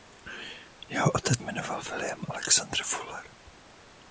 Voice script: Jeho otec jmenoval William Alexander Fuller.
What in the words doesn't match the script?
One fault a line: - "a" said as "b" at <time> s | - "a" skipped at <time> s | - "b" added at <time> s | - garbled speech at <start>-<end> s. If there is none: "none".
none